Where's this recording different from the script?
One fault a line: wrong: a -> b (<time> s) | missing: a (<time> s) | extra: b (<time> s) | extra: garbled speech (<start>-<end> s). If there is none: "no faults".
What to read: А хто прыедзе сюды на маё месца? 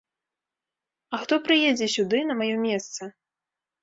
no faults